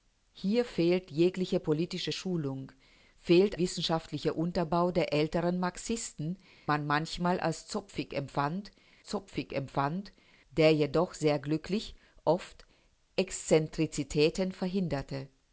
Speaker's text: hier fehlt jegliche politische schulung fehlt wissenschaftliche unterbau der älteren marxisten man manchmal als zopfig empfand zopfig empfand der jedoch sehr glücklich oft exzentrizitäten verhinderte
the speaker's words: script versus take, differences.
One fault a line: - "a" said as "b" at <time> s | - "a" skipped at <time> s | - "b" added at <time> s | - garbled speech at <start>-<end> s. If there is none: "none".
none